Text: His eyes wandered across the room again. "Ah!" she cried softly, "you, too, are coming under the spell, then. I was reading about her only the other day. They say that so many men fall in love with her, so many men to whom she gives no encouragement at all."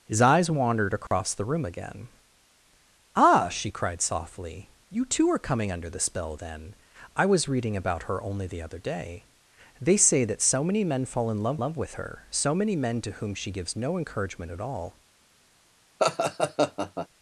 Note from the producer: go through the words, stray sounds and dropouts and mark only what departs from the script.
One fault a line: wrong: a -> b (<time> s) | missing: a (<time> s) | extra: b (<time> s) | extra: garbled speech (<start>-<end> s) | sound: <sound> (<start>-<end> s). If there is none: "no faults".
sound: dropout (1.1-1.1 s)
extra: love (11.6 s)
sound: laugh (16.0-17.1 s)